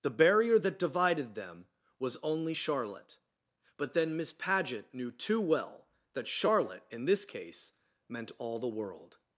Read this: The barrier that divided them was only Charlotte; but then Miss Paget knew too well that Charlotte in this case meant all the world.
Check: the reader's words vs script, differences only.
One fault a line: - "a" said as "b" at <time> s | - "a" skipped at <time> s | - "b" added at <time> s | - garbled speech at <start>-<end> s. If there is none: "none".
none